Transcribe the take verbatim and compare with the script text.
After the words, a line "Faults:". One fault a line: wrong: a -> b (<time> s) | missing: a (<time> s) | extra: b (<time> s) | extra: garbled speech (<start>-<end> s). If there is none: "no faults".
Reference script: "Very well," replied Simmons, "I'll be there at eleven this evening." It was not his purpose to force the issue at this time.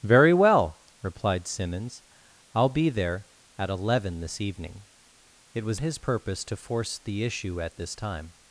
"Very well," replied Simmons, "I'll be there at eleven this evening." It was his purpose to force the issue at this time.
Faults:
missing: not (5.8 s)